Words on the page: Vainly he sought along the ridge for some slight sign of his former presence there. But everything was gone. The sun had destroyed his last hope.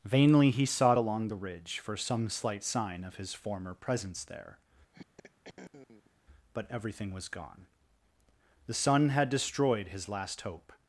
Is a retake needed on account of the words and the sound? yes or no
yes